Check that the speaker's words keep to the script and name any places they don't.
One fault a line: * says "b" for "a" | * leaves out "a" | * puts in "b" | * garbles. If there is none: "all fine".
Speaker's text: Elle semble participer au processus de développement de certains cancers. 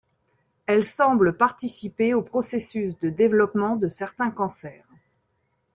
all fine